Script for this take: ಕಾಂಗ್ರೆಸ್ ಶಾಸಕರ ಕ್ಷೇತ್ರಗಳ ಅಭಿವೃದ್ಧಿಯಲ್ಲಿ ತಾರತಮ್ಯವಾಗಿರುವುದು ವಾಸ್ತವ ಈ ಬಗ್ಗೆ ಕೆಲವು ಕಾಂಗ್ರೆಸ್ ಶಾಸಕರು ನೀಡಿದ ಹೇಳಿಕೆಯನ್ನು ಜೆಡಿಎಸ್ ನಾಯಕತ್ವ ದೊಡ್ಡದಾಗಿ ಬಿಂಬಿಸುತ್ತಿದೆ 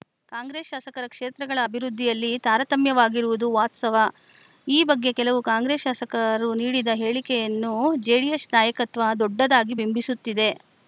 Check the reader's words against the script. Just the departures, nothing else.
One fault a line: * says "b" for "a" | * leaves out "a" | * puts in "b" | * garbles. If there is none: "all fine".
all fine